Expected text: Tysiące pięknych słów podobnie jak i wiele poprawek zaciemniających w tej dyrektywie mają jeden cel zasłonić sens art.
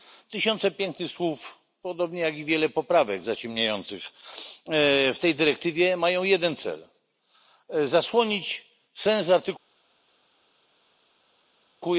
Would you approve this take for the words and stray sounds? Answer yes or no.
yes